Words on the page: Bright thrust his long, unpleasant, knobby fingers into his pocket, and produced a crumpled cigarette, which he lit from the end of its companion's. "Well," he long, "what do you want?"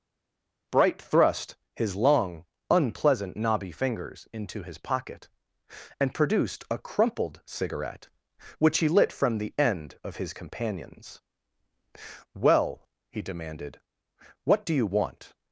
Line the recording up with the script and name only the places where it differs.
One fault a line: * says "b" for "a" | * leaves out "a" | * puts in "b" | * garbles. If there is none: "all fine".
* says "his" for "its"
* says "demanded" for "long"